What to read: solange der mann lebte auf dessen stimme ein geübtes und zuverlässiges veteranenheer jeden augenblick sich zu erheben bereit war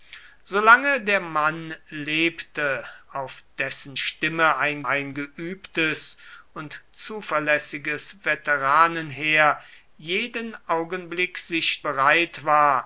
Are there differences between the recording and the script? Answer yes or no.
yes